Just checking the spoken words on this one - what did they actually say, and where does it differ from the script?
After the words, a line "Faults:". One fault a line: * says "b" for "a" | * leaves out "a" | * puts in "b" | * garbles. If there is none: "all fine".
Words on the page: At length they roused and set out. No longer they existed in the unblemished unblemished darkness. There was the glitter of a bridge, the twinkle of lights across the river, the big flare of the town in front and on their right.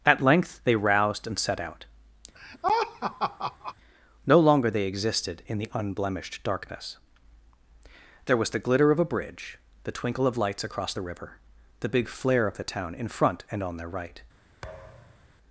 At length they roused and set out. No longer they existed in the unblemished darkness. There was the glitter of a bridge, the twinkle of lights across the river, the big flare of the town in front and on their right.
Faults:
* leaves out "unblemished"